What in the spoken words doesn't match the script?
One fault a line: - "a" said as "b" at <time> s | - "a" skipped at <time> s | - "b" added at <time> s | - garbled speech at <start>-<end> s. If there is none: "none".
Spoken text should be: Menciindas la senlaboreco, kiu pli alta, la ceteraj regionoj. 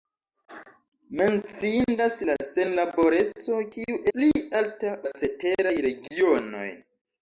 none